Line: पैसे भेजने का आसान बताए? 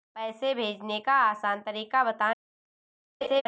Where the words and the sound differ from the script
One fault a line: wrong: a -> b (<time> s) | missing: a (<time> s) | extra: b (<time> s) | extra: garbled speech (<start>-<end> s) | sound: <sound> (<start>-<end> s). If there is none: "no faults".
extra: तरीका (1.6 s)
sound: laugh (3.2-3.4 s)